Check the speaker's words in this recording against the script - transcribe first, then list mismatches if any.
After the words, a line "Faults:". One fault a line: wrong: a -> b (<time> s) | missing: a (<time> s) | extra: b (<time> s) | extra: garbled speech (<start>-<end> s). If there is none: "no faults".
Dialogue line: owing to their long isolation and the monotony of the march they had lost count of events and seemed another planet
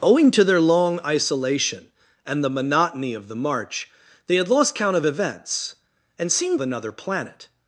owing to their long isolation and the monotony of the march they had lost count of events and seemed another planet
Faults:
no faults